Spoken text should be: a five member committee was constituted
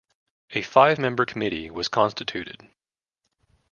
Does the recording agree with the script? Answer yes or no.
yes